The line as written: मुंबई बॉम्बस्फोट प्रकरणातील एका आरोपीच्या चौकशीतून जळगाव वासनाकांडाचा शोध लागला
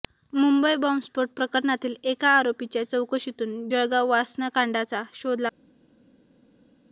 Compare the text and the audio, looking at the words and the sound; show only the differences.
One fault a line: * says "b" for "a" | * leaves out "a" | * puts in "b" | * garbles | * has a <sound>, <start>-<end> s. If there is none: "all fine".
all fine